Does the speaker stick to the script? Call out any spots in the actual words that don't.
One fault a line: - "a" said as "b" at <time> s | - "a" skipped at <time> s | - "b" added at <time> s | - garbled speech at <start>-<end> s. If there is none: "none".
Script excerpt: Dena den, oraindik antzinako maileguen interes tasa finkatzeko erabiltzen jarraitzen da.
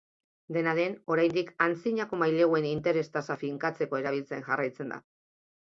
none